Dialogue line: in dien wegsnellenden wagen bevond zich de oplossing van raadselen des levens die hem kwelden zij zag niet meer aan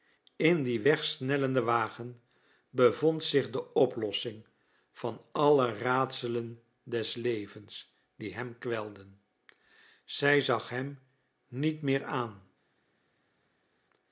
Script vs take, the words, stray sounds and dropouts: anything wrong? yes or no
yes